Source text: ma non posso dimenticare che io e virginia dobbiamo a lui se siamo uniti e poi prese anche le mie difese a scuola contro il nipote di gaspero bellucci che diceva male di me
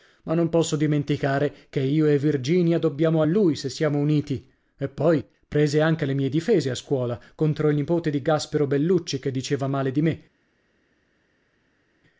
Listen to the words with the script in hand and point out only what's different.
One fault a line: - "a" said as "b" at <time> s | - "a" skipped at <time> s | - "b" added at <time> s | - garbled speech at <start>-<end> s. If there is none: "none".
none